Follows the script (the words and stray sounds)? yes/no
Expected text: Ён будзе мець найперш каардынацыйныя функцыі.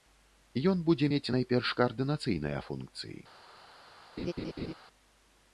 no